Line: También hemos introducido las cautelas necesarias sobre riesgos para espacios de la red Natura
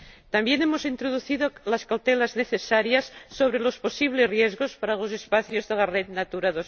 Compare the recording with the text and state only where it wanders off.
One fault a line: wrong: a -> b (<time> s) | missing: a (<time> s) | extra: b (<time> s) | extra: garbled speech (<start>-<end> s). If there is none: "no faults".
extra: los posibles (3.6 s)
extra: los (5.0 s)